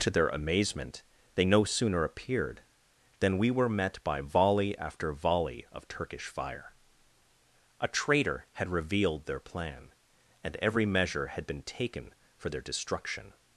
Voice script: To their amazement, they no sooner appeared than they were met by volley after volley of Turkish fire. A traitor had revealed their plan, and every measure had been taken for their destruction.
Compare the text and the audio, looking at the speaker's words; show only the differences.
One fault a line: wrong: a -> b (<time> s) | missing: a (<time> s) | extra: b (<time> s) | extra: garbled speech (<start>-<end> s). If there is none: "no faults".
wrong: they -> we (3.4 s)